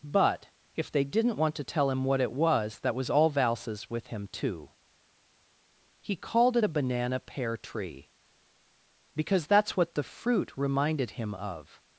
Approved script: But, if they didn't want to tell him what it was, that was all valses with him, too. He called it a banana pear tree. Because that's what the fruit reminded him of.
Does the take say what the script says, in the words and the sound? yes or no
yes